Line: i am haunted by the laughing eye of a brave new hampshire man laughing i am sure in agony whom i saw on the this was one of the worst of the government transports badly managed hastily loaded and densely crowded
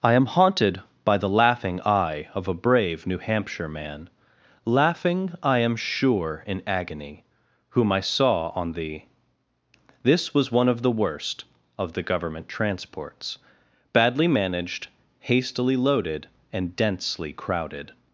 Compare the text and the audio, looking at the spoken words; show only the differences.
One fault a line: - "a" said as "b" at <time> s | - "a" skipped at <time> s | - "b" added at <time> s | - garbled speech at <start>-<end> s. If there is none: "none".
none